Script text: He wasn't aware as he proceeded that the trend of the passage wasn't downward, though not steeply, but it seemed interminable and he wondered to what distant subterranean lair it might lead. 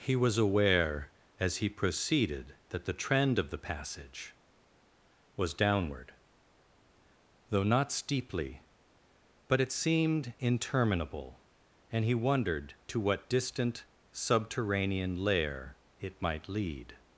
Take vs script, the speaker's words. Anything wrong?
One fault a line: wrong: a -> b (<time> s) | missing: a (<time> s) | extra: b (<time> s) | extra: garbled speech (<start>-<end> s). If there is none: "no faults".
wrong: wasn't -> was (0.1 s)
wrong: wasn't -> was (5.3 s)